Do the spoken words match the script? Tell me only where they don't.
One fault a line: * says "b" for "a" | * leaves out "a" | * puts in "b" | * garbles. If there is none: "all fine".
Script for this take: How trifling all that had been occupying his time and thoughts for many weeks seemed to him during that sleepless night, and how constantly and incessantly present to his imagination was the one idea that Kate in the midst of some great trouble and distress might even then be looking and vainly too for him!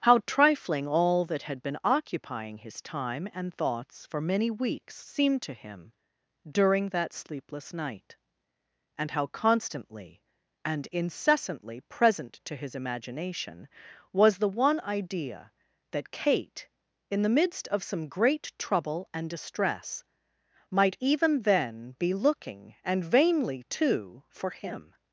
all fine